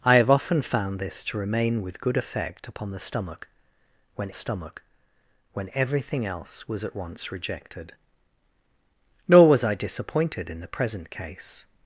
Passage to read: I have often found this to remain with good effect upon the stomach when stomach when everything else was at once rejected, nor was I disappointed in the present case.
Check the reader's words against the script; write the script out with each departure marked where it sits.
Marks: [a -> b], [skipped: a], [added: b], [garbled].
I have often found this to remain with good effect upon the stomach when stomach when everything else was at once rejected, nor was I disappointed in the present case.